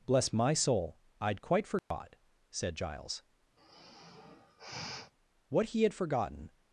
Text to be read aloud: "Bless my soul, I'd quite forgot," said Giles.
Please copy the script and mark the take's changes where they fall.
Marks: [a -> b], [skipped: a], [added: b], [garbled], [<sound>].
"Bless my soul, I'd quite forgot," [dropout] said Giles. [sigh] [added: What he had forgotten]